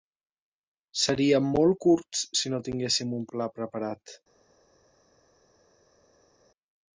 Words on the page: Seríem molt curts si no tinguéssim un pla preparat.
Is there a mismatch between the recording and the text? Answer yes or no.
no